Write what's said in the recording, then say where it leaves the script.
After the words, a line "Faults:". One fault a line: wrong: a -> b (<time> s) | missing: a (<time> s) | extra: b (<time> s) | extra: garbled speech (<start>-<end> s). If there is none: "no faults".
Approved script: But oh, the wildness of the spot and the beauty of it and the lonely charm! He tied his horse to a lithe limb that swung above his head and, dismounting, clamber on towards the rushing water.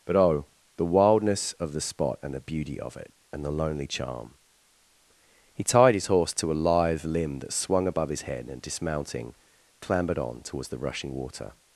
But oh, the wildness of the spot and the beauty of it and the lonely charm! He tied his horse to a lithe limb that swung above his head and, dismounting, clambered on towards the rushing water.
Faults:
wrong: clamber -> clambered (9.8 s)